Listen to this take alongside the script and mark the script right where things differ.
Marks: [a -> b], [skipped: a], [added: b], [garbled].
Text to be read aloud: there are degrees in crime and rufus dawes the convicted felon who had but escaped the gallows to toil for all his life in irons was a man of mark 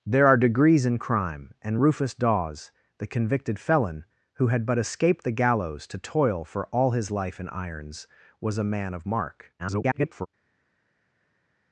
there are degrees in crime and rufus dawes the convicted felon who had but escaped the gallows to toil for all his life in irons was a man of mark [garbled]